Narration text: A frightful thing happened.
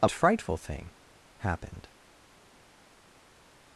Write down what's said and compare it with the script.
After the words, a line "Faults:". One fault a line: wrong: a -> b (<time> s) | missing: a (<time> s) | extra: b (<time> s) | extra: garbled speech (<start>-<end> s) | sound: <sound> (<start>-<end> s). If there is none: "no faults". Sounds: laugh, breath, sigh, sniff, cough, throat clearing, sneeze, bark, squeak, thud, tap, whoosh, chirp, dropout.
A frightful thing happened.
Faults:
no faults